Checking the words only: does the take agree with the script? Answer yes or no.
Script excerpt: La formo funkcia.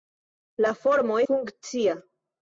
yes